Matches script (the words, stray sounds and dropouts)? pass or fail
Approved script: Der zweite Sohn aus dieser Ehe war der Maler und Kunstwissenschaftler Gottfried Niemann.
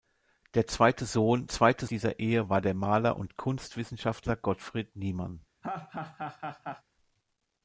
fail